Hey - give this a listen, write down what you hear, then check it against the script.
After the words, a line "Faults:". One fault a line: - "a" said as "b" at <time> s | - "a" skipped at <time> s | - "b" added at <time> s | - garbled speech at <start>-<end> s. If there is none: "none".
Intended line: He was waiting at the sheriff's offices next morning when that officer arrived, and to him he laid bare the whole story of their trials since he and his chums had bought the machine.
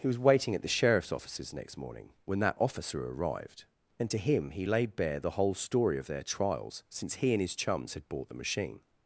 He was waiting at the sheriff's offices next morning when that officer arrived, and to him he laid bare the whole story of their trials since he and his chums had bought the machine.
Faults:
none